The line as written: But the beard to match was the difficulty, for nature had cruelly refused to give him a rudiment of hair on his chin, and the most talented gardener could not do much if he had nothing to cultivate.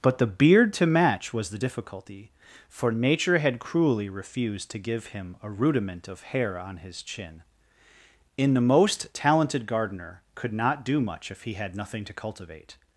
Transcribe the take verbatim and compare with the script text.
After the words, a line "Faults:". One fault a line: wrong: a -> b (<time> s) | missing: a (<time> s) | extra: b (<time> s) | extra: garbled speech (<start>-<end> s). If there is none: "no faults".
But the beard to match was the difficulty, for nature had cruelly refused to give him a rudiment of hair on his chin, in the most talented gardener could not do much if he had nothing to cultivate.
Faults:
wrong: and -> in (8.4 s)